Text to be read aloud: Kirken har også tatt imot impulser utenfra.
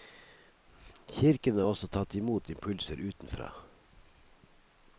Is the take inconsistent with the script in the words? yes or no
no